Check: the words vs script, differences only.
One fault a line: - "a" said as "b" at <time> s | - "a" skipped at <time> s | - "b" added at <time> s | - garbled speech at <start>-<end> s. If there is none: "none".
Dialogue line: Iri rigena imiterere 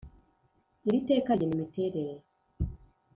- "teka" added at 1.1 s